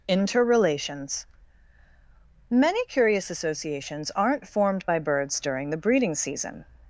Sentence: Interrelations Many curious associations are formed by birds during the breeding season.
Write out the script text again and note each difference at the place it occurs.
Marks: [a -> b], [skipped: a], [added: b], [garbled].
Interrelations Many curious associations [are -> aren't] formed by birds during the breeding season.